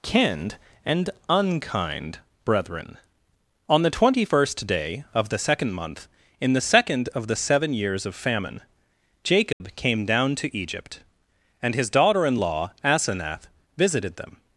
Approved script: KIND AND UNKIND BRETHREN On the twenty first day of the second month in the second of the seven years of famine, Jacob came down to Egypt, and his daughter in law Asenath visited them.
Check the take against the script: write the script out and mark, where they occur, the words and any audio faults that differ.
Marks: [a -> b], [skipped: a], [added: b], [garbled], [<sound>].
KIND AND UNKIND BRETHREN On the twenty first day of the second month in the second of the seven years of famine, Jacob [dropout] came down to Egypt, and his daughter in law Asenath visited them.